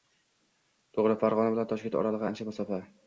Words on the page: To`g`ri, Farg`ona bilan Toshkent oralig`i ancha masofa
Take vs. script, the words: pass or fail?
pass